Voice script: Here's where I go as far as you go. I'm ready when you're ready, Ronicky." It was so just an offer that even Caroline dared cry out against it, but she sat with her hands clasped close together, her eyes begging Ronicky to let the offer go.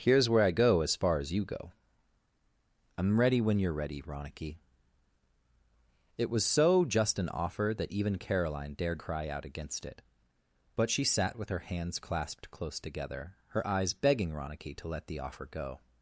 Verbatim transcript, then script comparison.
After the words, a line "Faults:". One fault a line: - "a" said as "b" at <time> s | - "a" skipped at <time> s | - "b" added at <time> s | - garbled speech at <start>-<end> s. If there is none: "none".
Here's where I go as far as you go. I'm ready when you're ready, Ronicky." It was so just an offer that even Caroline dared cry out against it, but she sat with her hands clasped close together, her eyes begging Ronicky to let the offer go.
Faults:
none